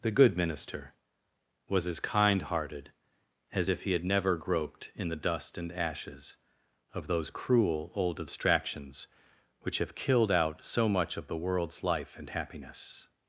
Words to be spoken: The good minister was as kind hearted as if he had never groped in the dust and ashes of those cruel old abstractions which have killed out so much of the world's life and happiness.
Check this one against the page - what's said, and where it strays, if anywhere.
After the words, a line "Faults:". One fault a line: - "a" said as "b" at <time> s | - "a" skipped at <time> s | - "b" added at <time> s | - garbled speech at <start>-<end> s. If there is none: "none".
The good minister was as kind hearted as if he had never groped in the dust and ashes of those cruel old abstractions which have killed out so much of the world's life and happiness.
Faults:
none